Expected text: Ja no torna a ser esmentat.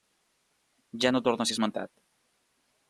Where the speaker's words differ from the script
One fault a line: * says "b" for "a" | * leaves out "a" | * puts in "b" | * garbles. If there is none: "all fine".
all fine